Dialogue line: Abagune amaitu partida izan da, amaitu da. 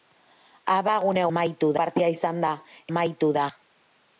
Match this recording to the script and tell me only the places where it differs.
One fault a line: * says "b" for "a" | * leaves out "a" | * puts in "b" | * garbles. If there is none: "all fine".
all fine